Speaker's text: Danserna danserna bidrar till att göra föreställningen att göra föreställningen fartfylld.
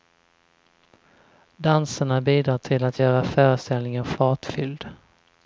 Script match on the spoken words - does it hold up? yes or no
no